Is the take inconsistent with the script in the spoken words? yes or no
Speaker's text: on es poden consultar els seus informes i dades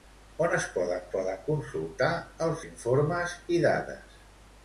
yes